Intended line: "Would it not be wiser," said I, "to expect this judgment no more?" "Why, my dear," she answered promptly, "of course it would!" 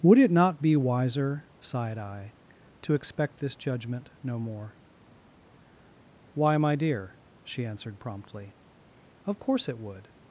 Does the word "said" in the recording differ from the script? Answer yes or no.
yes